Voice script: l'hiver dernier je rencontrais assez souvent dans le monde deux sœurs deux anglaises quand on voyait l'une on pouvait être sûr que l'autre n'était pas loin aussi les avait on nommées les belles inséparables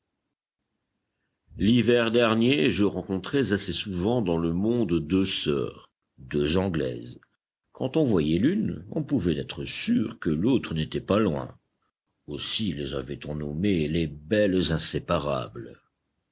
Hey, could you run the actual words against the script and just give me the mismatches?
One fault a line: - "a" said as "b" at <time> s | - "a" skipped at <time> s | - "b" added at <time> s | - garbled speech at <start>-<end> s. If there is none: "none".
none